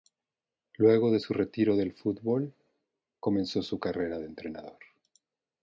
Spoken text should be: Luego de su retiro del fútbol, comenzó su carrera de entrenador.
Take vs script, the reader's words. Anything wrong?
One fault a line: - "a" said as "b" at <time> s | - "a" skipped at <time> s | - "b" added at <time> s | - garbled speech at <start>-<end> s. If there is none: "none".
none